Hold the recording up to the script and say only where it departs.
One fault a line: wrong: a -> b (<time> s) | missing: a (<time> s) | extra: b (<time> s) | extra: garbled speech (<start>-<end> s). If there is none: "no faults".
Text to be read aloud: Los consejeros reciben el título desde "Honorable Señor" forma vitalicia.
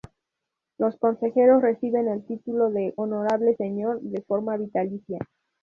wrong: desde -> de (2.7 s)
extra: de (4.0 s)